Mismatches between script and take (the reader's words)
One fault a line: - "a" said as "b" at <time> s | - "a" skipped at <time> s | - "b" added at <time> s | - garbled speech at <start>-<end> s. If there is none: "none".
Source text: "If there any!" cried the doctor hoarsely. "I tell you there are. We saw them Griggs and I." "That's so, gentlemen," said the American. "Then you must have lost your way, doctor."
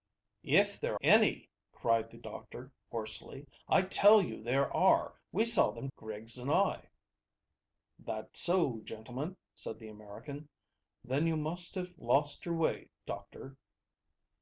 none